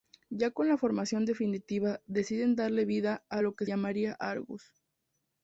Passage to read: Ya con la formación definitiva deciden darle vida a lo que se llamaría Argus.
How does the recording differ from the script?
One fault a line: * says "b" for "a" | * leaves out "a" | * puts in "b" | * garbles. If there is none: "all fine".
* leaves out "se"